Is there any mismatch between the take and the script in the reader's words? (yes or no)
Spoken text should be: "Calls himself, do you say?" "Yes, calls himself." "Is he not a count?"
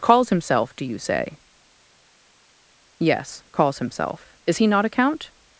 no